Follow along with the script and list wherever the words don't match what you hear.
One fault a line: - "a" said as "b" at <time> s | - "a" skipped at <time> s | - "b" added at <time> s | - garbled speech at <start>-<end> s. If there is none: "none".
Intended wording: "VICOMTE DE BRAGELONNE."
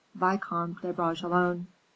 none